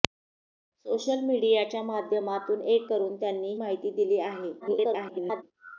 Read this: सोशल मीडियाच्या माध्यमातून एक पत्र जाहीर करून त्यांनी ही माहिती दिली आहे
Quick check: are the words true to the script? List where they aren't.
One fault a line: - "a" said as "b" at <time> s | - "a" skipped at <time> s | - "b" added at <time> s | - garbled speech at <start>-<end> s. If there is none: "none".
- "पत्र जाहीर" skipped at 2.9 s
- "ही" skipped at 3.5 s
- garbled speech at 4.6-5.4 s